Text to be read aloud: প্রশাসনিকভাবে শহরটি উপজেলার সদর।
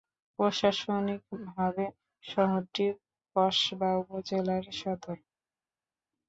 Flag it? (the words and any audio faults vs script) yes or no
yes